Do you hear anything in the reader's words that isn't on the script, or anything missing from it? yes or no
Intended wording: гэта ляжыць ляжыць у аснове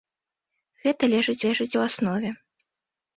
no